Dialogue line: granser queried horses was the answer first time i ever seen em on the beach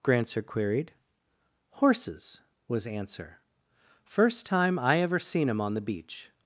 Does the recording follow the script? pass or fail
fail